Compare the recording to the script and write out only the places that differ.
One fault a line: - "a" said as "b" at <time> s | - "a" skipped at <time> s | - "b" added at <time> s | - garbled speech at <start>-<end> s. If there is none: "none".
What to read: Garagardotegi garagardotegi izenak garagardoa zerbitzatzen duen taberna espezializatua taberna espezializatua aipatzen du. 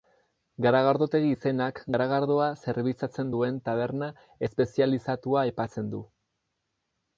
- "garagardotegi" skipped at 1.3 s
- "taberna espezializatua" skipped at 5.4 s